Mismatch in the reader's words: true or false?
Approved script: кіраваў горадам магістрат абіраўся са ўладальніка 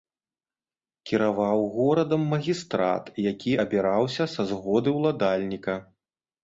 true